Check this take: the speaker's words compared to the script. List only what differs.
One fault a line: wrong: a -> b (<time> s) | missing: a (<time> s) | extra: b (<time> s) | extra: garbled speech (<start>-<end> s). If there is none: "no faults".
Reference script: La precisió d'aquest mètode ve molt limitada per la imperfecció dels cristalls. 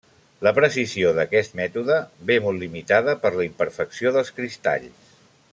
no faults